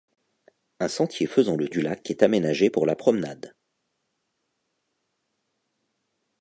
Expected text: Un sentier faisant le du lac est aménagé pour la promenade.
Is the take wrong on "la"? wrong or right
right